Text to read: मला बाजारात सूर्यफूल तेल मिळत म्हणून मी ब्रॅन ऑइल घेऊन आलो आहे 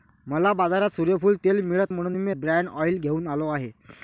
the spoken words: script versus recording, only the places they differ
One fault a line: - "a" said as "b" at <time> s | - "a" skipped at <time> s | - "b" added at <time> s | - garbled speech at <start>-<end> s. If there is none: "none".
none